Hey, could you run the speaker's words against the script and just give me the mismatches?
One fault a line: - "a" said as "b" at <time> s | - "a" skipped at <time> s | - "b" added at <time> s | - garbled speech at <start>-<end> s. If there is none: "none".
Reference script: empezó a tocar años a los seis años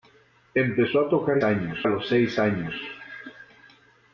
none